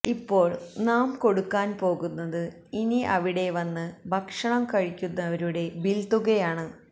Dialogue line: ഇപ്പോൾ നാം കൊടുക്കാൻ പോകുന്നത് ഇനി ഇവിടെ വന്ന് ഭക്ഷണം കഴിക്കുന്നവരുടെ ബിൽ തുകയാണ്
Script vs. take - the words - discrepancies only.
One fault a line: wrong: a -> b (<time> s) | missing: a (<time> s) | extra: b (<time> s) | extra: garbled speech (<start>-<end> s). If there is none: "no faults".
wrong: ഇവിടെ -> അവിടെ (3.1 s)